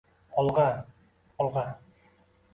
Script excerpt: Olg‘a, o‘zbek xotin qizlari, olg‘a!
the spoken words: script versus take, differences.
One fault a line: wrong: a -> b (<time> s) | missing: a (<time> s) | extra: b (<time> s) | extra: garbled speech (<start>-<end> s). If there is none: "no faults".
missing: o‘zbek xotin qizlari (0.6 s)